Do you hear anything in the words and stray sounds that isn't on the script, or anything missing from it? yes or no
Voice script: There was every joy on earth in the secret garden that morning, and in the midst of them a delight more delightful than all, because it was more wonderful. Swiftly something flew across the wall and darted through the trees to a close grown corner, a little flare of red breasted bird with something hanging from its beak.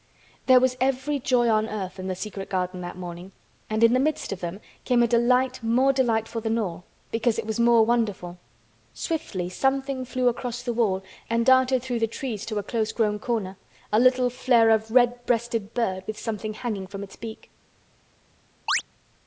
yes